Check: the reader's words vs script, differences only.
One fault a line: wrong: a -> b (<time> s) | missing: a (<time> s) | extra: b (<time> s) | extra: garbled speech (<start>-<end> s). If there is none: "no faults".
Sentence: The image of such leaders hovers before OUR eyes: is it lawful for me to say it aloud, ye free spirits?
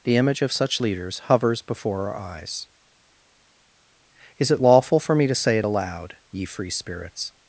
no faults